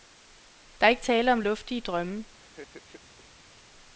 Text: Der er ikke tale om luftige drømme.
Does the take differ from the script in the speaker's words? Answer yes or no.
no